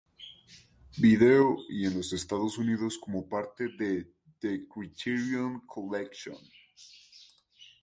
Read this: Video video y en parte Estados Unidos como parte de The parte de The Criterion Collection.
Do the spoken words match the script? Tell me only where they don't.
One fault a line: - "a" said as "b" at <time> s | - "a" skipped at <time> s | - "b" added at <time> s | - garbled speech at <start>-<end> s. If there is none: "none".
- "video" skipped at 1.6 s
- "parte" said as "los" at 1.9 s
- "parte de The" skipped at 4.6 s